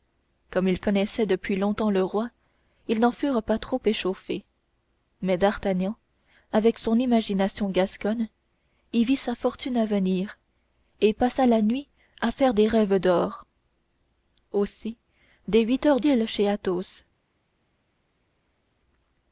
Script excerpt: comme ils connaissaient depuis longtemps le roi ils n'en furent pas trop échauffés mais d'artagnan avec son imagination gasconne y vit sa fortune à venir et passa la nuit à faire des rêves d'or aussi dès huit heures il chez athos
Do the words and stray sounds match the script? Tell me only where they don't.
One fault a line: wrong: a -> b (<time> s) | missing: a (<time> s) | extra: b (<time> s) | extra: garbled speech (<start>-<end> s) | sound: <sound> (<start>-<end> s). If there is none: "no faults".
no faults